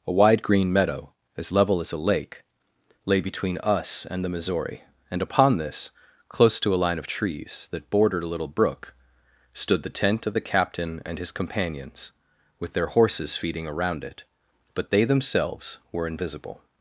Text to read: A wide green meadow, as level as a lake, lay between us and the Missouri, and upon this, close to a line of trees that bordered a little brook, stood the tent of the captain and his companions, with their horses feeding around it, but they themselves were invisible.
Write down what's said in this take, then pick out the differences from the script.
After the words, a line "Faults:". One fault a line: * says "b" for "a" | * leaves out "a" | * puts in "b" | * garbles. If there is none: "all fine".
A wide green meadow, as level as a lake, lay between us and the Missouri, and upon this, close to a line of trees that bordered a little brook, stood the tent of the captain and his companions, with their horses feeding around it, but they themselves were invisible.
Faults:
all fine